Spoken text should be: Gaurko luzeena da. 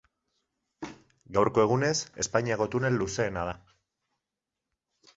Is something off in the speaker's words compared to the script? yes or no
yes